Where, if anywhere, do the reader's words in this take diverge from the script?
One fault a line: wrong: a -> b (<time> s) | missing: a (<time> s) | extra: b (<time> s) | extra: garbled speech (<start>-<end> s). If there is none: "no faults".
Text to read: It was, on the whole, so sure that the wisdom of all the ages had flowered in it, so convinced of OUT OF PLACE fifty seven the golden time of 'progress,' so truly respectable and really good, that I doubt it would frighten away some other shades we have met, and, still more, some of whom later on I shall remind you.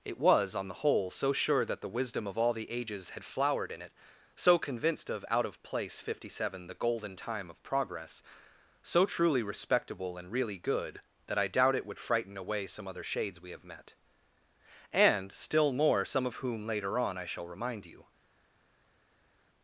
no faults